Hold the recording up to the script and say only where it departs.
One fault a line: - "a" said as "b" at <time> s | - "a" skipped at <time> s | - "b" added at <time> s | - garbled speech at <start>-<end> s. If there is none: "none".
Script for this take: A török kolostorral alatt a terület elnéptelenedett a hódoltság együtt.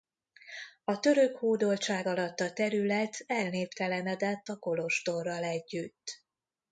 - "kolostorral" said as "hódoltság" at 1.4 s
- "hódoltság" said as "kolostorral" at 4.6 s